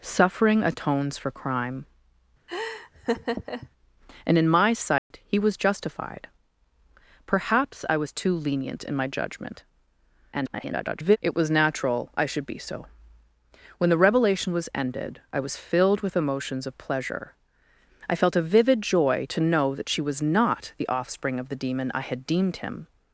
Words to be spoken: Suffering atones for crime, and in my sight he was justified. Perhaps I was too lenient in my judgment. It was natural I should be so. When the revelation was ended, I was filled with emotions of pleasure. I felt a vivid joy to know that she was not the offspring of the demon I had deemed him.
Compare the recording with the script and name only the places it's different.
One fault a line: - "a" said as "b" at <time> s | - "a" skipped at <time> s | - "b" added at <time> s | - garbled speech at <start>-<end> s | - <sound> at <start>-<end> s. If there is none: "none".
- laugh at 2.5-3.7 s
- dropout at 5.0-5.1 s
- garbled speech at 10.3-11.2 s